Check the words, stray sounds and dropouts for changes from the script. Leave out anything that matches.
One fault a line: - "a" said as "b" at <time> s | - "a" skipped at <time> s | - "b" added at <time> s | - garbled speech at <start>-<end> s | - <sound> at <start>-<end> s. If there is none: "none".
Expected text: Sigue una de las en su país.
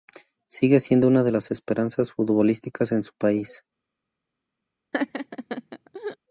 - "siendo" added at 0.8 s
- "esperanzas futbolísticas" added at 1.5 s
- laugh at 4.9-6.2 s